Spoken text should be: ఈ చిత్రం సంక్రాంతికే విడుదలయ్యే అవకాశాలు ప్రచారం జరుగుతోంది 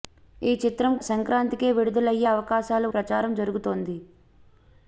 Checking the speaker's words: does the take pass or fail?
pass